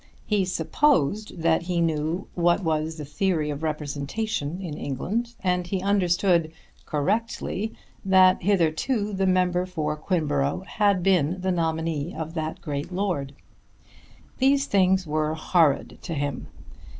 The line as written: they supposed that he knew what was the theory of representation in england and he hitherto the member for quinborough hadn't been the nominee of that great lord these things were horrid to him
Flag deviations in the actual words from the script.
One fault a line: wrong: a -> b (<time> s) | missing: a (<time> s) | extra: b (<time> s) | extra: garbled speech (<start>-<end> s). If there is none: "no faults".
wrong: they -> he (0.2 s)
extra: understood correctly that (5.8 s)
wrong: hadn't -> had (10.7 s)